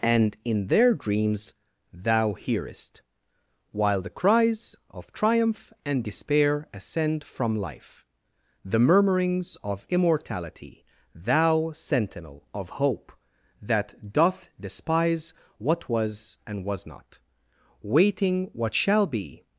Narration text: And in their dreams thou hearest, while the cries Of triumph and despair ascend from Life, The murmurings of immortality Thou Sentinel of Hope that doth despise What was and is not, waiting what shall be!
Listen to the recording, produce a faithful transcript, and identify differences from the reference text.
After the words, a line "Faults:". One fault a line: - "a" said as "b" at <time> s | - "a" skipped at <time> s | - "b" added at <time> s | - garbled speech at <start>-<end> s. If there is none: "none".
And in their dreams thou hearest, while the cries Of triumph and despair ascend from Life, The murmurings of immortality Thou Sentinel of Hope that doth despise What was and was not, waiting what shall be!
Faults:
- "is" said as "was" at 16.6 s